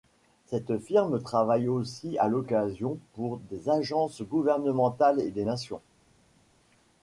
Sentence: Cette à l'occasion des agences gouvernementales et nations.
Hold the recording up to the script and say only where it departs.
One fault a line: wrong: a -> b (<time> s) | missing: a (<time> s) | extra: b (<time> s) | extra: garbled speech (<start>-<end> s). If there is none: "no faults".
extra: firme travaille aussi (0.8 s)
extra: pour (3.1 s)
extra: des (5.3 s)